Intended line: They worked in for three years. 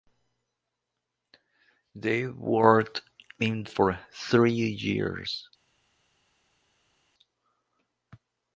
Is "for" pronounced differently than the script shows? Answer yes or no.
no